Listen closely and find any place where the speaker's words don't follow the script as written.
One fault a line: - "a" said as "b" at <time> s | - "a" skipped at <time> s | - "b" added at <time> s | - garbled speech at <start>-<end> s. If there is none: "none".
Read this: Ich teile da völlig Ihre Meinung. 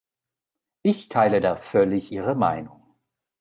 none